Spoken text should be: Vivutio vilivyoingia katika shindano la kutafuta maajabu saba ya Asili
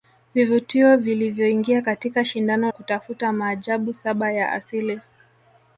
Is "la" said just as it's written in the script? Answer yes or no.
no